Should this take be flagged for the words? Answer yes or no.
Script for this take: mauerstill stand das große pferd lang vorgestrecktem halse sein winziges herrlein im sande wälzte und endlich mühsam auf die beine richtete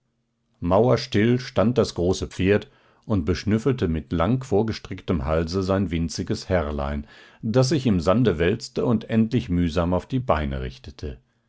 yes